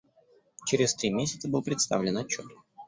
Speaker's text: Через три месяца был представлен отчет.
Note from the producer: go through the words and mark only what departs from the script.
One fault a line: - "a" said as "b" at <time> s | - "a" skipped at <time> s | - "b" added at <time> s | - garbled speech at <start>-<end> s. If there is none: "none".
none